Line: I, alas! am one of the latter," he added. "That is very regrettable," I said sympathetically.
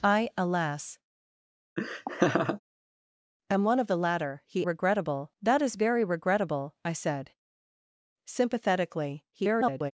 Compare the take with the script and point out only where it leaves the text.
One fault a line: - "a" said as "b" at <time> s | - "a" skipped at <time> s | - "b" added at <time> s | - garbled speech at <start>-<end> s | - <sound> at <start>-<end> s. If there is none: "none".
- laugh at 1.8-2.6 s
- "added" said as "regrettable" at 4.6 s
- garbled speech at 9.3-9.9 s